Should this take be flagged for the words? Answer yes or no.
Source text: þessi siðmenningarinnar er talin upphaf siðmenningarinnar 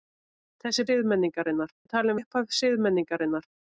no